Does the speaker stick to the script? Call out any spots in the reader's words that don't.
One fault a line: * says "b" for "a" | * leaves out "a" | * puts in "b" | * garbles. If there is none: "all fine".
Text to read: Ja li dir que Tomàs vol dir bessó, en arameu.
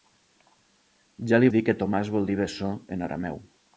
all fine